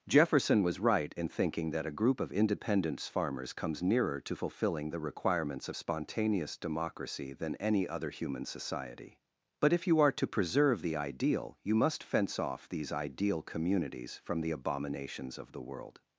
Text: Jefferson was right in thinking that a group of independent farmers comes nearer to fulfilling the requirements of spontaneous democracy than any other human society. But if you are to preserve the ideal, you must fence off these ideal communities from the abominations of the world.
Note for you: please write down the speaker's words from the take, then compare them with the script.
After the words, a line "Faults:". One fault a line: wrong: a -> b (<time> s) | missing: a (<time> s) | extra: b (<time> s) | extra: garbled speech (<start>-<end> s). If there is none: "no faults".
Jefferson was right in thinking that a group of independence farmers comes nearer to fulfilling the requirements of spontaneous democracy than any other human society. But if you are to preserve the ideal, you must fence off these ideal communities from the abominations of the world.
Faults:
wrong: independent -> independence (2.3 s)